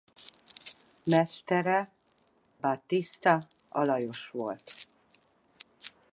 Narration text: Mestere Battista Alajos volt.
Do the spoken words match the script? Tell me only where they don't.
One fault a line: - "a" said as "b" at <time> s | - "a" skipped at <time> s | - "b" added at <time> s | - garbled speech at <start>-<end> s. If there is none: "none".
none